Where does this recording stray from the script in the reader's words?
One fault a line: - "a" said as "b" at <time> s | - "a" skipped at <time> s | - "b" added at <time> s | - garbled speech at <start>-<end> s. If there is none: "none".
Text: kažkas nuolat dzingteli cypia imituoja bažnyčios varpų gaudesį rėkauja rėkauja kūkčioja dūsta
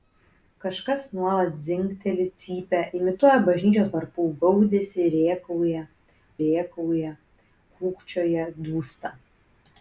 none